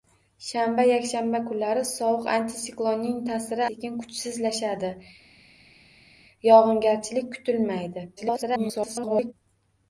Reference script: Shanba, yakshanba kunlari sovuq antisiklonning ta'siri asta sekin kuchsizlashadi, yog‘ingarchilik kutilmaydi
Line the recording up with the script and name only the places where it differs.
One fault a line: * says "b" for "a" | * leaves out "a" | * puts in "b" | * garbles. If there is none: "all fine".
* leaves out "asta"
* garbles